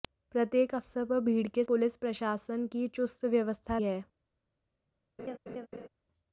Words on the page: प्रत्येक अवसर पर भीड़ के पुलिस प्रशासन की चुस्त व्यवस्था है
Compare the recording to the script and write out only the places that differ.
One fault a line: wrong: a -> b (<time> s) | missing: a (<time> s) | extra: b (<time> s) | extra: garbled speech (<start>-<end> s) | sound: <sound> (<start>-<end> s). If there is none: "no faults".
sound: laugh (5.2-5.9 s)